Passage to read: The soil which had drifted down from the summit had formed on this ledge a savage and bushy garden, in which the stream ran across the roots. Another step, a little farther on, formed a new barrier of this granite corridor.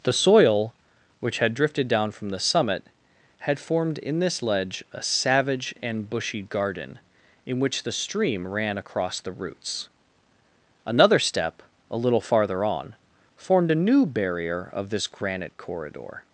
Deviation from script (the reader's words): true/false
true